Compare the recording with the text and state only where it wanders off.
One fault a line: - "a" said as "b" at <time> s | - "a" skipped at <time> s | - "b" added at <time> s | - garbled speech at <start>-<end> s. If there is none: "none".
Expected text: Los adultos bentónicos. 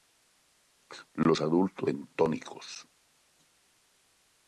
none